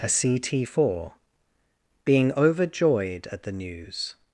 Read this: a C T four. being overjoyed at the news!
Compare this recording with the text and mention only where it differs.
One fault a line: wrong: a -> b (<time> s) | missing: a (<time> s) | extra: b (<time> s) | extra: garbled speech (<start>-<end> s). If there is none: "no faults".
no faults